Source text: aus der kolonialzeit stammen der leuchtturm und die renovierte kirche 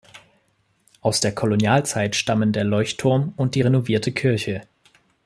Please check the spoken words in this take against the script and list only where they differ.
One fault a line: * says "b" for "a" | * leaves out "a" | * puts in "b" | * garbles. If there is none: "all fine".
all fine